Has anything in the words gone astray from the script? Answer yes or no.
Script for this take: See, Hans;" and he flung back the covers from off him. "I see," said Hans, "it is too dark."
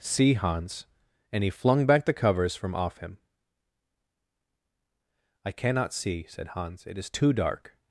yes